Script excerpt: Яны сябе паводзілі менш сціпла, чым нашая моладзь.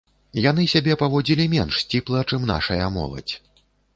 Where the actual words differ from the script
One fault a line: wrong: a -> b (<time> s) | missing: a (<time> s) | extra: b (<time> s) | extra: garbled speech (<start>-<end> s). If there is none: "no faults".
no faults